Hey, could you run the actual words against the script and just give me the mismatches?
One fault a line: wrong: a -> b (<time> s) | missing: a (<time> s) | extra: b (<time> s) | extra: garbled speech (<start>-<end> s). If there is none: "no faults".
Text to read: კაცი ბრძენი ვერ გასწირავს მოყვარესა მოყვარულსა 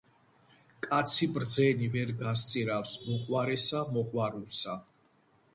no faults